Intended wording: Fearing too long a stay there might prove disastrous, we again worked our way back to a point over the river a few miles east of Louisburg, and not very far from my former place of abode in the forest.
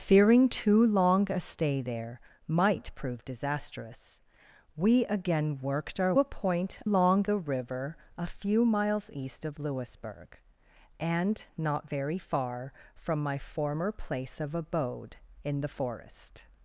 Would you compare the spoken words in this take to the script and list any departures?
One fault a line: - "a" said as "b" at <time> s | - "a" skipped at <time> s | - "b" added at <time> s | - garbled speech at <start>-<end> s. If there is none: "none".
- "way back to" skipped at 6.1 s
- "over" said as "long" at 6.8 s